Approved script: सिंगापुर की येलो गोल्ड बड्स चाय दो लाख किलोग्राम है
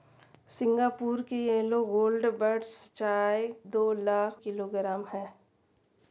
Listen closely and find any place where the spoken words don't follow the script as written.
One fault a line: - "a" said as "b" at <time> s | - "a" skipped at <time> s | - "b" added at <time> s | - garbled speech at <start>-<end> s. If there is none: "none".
none